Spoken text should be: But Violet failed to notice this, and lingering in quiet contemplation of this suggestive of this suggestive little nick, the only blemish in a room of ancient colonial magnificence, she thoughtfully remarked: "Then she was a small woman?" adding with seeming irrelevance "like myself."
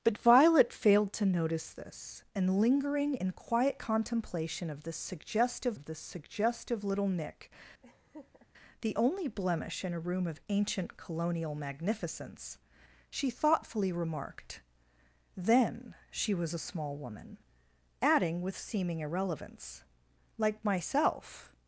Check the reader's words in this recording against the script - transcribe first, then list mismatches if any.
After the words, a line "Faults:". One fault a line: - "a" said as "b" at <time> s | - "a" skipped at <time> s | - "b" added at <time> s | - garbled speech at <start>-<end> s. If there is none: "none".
But Violet failed to notice this, and lingering in quiet contemplation of this suggestive of this suggestive little nick, the only blemish in a room of ancient colonial magnificence, she thoughtfully remarked: "Then she was a small woman?" adding with seeming irrelevance "like myself."
Faults:
none